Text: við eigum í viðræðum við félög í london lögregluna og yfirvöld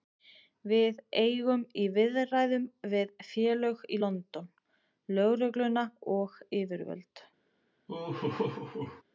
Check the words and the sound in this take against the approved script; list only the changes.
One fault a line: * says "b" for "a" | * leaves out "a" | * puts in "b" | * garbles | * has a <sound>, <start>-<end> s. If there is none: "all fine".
* has a laugh, 7.9-9.0 s